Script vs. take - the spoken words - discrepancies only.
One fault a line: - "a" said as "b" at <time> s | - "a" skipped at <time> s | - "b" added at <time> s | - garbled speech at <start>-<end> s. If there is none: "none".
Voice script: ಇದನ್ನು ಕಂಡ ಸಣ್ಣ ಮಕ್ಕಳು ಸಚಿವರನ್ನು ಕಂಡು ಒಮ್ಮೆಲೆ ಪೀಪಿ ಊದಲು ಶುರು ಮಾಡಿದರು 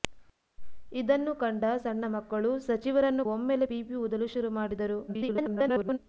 - "ಕಂಡು" skipped at 3.2 s
- garbled speech at 5.1-6.0 s